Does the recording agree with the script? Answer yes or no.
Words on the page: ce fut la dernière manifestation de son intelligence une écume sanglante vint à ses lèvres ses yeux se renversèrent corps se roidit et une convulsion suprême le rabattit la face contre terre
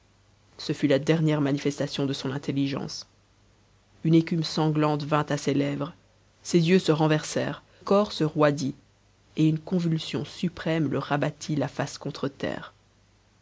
yes